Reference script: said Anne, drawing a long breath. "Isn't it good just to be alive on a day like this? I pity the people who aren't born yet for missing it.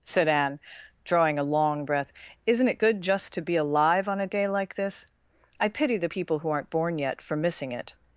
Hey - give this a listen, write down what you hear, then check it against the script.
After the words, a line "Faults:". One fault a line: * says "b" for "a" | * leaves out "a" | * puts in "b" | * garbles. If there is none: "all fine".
said Anne, drawing a long breath. "Isn't it good just to be alive on a day like this? I pity the people who aren't born yet for missing it.
Faults:
all fine